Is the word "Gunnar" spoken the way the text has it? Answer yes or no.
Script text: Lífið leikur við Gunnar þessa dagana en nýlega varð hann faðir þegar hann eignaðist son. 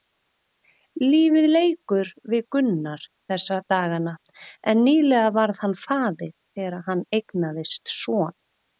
yes